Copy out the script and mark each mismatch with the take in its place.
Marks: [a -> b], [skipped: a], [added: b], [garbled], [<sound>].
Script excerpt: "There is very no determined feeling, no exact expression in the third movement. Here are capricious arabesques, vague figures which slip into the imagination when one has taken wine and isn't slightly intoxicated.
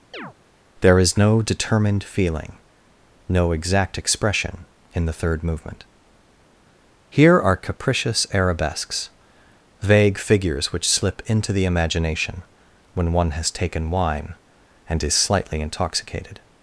[chirp] "There is [skipped: very] no determined feeling, no exact expression in the third movement. Here are capricious arabesques, vague figures which slip into the imagination when one has taken wine and [isn't -> is] slightly intoxicated.